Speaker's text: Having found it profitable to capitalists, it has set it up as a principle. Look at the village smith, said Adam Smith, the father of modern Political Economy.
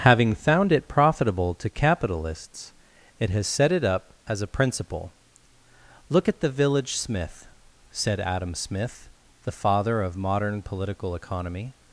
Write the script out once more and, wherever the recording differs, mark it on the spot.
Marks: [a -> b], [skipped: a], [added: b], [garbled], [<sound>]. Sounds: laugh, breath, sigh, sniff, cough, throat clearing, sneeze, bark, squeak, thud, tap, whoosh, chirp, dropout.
Having found it profitable to capitalists, it has set it up as a principle. Look at the village smith, said Adam Smith, the father of modern Political Economy.